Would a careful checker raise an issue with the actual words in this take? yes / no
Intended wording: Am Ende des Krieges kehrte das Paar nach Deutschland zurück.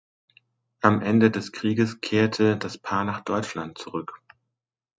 no